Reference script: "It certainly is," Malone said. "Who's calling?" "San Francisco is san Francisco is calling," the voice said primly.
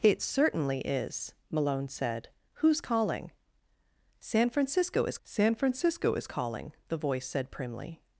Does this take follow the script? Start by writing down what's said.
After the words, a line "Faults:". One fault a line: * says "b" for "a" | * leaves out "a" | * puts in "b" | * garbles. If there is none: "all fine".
"It certainly is," Malone said. "Who's calling?" "San Francisco is san Francisco is calling," the voice said primly.
Faults:
all fine